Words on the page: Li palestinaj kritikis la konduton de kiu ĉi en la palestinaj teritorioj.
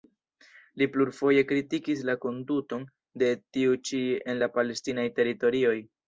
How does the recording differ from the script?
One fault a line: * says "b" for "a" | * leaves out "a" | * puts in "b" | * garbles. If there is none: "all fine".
* says "plurfoje" for "palestinaj"
* says "tiu" for "kiu"